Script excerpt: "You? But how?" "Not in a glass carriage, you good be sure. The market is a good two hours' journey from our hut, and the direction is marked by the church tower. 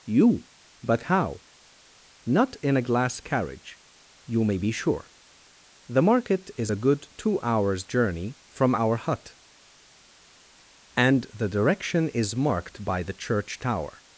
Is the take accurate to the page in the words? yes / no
no